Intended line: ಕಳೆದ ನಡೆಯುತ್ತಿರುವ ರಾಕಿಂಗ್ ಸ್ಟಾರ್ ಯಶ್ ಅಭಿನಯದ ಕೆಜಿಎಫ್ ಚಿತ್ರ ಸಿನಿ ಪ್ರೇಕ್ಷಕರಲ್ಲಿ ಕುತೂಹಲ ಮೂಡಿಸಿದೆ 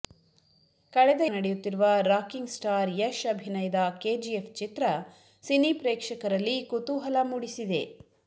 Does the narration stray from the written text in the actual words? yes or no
no